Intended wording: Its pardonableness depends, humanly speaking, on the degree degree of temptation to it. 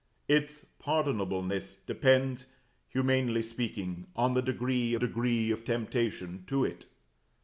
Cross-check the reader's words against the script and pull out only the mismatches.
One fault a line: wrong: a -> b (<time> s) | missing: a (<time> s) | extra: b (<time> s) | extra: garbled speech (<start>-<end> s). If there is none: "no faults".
no faults